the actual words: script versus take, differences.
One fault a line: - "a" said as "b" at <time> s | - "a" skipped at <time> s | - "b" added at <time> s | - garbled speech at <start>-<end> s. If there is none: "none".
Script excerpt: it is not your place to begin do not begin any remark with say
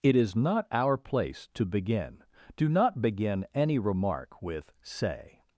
- "your" said as "our" at 0.7 s